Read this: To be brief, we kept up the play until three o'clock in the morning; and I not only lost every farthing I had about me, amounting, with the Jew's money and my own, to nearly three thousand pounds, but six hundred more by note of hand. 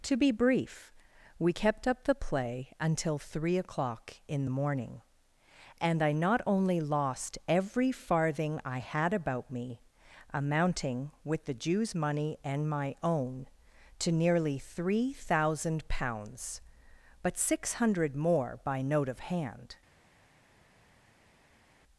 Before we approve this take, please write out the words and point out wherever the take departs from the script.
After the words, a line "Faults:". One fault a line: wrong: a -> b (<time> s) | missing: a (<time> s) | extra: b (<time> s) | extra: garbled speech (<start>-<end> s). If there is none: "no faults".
To be brief, we kept up the play until three o'clock in the morning; and I not only lost every farthing I had about me, amounting, with the Jew's money and my own, to nearly three thousand pounds, but six hundred more by note of hand.
Faults:
no faults